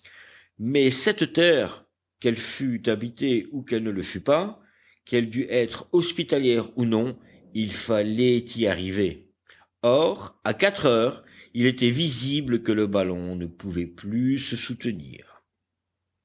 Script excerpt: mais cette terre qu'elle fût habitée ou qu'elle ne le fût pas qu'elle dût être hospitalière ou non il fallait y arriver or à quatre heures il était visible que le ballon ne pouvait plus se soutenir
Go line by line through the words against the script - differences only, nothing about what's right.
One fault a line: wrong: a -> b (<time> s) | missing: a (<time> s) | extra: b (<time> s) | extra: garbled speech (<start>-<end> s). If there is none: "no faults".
no faults